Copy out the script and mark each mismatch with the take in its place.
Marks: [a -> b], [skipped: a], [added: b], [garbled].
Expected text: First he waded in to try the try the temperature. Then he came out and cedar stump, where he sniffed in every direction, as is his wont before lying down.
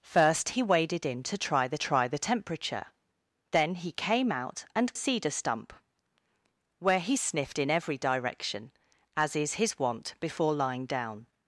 First he waded in to try the try the temperature. Then he came out and cedar stump, where he sniffed in every direction, as is his wont before lying down.